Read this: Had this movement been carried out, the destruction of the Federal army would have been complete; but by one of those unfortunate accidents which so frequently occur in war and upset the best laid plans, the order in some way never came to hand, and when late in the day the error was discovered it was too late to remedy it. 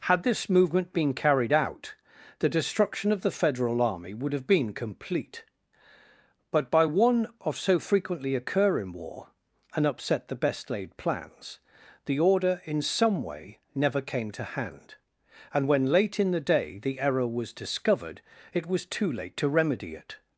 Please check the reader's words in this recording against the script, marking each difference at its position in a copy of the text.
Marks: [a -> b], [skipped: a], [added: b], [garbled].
Had this movement been carried out, the destruction of the Federal army would have been complete; but by one of [skipped: those unfortunate accidents which] so frequently occur in war and upset the best laid plans, the order in some way never came to hand, and when late in the day the error was discovered it was too late to remedy it.